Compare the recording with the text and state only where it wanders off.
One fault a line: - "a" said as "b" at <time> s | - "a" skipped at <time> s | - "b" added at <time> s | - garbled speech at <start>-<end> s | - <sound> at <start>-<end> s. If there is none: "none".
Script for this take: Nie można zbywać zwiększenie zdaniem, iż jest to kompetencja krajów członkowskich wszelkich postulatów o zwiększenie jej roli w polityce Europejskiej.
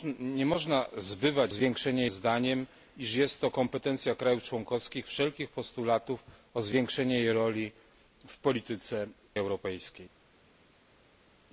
none